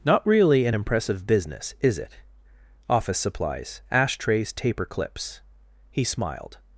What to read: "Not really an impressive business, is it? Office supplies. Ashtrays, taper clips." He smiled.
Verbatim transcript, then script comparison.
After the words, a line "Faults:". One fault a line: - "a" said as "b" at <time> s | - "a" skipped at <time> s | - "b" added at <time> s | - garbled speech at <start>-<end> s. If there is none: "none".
"Not really an impressive business, is it? Office supplies. Ashtrays, taper clips." He smiled.
Faults:
none